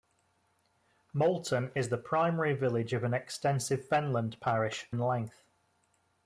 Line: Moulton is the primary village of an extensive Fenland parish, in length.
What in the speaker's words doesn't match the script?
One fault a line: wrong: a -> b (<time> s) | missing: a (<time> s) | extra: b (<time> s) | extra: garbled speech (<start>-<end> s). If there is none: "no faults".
no faults